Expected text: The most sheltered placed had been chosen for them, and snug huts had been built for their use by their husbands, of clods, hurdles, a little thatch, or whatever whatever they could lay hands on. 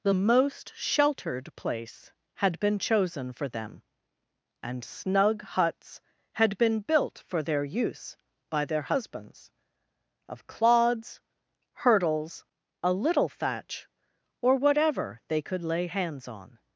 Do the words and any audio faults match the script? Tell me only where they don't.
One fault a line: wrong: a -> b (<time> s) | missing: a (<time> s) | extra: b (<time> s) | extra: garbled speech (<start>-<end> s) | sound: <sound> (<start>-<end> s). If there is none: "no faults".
wrong: placed -> place (1.6 s)
missing: whatever (15.2 s)